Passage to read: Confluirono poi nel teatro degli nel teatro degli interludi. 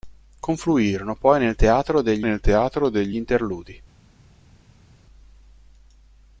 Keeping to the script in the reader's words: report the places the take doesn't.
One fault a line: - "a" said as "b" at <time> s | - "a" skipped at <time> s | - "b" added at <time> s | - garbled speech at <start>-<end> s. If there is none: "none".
none